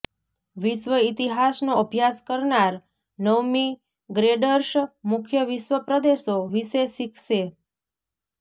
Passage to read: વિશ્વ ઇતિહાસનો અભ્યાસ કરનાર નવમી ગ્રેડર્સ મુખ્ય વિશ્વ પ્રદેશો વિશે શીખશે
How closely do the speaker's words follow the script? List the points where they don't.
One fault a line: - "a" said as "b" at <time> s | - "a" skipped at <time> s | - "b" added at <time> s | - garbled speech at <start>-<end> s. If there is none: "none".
none